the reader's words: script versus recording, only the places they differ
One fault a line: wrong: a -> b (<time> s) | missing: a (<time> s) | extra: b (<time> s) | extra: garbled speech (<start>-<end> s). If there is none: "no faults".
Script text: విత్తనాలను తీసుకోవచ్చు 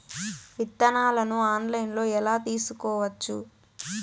extra: ఆన్లైన్లో ఎలా (1.5 s)